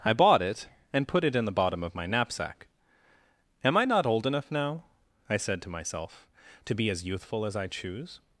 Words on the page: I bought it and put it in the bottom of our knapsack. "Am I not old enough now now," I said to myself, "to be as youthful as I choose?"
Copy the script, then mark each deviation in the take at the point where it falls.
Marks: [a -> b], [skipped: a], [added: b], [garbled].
I bought it and put it in the bottom of [our -> my] knapsack. "Am I not old enough now [skipped: now,"] I said to myself, "to be as youthful as I choose?"